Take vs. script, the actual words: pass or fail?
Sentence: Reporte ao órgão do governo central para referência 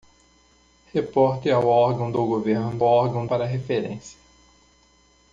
fail